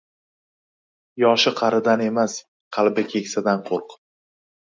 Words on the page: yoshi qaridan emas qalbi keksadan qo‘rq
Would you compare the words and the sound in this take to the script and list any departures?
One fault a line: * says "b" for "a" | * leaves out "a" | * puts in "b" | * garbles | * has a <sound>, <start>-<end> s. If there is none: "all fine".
all fine